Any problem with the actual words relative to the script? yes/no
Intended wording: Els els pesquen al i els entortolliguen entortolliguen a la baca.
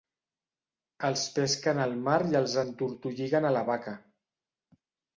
yes